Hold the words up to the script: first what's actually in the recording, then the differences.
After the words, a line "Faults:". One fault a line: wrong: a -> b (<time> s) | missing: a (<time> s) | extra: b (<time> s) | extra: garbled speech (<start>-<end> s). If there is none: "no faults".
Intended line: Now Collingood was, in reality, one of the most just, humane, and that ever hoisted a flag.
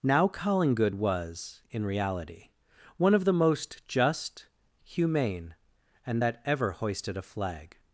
Now Collingood was, in reality, one of the most just, humane, and that ever hoisted a flag.
Faults:
no faults